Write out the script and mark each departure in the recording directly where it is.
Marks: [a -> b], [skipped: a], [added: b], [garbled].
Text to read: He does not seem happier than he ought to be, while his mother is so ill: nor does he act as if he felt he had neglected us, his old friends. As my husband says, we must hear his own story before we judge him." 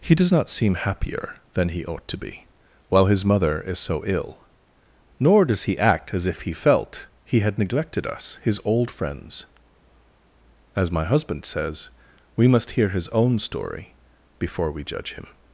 He does not seem happier than he ought to be, while his mother is so ill: nor does he act as if he felt he had neglected us, his old friends. As my husband says, we must hear his own story before we judge him."